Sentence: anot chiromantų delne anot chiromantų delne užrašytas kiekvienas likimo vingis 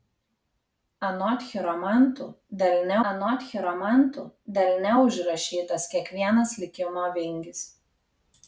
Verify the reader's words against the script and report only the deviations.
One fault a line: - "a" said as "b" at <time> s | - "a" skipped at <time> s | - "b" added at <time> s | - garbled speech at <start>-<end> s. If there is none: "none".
none